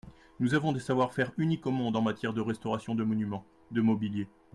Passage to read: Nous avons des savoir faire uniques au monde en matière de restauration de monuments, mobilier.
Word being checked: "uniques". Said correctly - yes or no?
yes